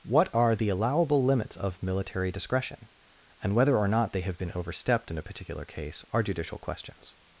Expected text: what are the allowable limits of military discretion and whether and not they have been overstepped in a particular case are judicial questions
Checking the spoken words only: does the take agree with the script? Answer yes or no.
no